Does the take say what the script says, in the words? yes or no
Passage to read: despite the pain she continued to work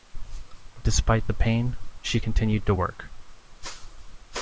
yes